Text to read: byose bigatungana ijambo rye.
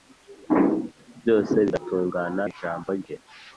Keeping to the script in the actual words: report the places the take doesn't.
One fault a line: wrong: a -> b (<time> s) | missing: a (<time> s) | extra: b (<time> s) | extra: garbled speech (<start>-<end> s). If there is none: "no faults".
no faults